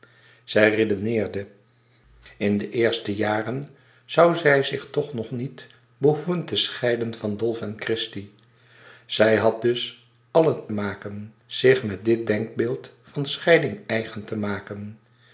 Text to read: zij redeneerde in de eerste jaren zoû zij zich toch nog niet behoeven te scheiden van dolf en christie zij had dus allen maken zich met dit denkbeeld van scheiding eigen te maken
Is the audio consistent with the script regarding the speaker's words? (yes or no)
yes